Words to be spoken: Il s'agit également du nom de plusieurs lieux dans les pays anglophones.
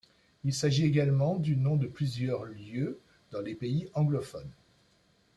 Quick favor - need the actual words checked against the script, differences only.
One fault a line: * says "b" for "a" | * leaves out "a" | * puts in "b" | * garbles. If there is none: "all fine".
all fine